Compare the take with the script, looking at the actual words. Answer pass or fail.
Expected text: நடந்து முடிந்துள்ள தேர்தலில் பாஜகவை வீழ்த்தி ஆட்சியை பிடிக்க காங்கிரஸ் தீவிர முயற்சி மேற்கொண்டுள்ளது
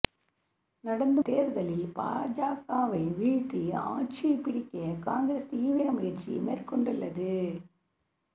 fail